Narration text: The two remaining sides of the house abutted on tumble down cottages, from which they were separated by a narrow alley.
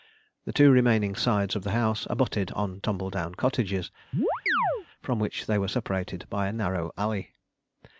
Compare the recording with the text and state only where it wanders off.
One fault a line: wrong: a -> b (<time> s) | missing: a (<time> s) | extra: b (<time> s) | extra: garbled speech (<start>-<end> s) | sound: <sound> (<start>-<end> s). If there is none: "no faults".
sound: chirp (4.1-4.9 s)